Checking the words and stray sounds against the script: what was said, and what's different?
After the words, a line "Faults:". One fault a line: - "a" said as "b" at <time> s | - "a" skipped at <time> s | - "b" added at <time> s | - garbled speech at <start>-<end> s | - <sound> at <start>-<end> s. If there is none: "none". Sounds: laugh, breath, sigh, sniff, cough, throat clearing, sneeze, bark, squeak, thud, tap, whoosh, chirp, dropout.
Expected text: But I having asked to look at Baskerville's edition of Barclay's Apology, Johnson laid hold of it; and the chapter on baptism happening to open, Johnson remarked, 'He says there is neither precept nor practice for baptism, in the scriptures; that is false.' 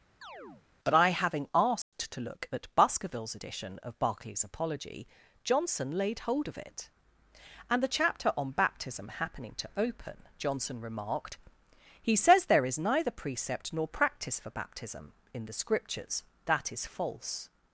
But I having asked to look at Baskerville's edition of Barclay's Apology, Johnson laid hold of it; and the chapter on baptism happening to open, Johnson remarked, 'He says there is neither precept nor practice for baptism, in the scriptures; that is false.'
Faults:
- chirp at 0.2-0.7 s
- dropout at 1.8-1.9 s